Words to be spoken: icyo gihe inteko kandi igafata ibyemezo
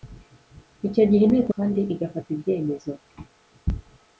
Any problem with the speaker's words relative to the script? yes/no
no